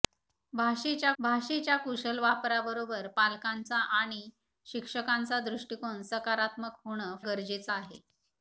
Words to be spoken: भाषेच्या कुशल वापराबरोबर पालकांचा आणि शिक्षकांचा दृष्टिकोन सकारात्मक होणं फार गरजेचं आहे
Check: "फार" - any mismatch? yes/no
yes